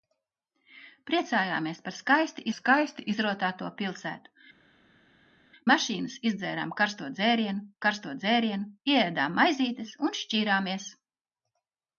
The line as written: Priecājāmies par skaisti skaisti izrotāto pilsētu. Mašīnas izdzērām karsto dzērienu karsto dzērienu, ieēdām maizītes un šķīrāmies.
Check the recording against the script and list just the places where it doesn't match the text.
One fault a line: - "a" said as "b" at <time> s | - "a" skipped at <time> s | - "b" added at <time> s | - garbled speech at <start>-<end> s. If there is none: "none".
none